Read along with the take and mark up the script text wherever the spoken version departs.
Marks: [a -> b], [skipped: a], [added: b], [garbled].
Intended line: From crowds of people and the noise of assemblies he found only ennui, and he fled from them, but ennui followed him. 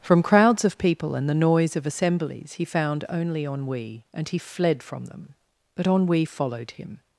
From crowds of people and the noise of assemblies he found only ennui, and he fled from them, but ennui followed him.